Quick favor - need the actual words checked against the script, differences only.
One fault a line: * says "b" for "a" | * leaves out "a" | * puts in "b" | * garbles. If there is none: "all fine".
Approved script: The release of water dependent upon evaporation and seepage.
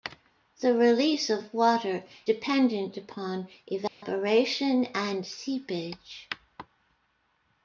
all fine